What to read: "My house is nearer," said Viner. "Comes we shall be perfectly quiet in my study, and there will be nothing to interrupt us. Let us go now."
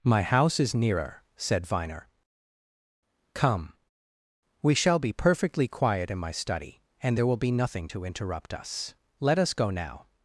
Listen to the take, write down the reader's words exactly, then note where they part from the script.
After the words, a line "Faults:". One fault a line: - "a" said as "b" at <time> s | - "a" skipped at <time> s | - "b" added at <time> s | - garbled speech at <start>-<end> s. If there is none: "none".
"My house is nearer," said Viner. "Come we shall be perfectly quiet in my study, and there will be nothing to interrupt us. Let us go now."
Faults:
- "Comes" said as "Come" at 3.3 s